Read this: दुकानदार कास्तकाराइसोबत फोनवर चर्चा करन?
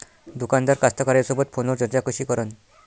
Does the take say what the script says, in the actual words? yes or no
no